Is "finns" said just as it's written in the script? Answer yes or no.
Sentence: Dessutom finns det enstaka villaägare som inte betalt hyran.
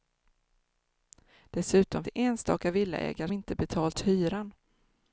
no